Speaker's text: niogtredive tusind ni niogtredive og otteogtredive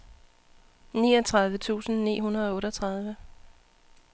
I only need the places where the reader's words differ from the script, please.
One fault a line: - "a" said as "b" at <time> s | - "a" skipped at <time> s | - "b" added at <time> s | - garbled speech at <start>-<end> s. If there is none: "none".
- "niogtredive" said as "hundrede" at 2.2 s